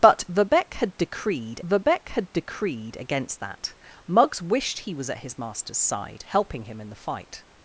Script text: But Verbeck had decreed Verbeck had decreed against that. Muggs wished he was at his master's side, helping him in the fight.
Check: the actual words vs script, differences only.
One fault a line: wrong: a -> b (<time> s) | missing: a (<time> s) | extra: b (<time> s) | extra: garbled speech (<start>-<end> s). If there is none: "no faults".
no faults